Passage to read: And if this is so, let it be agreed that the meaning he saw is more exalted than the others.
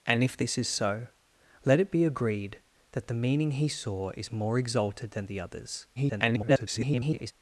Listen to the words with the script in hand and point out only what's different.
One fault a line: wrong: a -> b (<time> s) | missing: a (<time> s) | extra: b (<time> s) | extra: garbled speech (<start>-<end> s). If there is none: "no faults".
extra: garbled speech (6.0-7.3 s)